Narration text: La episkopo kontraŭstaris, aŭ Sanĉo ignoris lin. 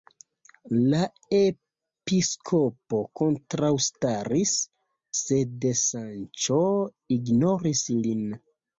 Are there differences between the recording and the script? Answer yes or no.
yes